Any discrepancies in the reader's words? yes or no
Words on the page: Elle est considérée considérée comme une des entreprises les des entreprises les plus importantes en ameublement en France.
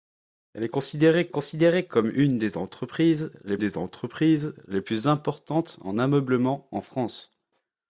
no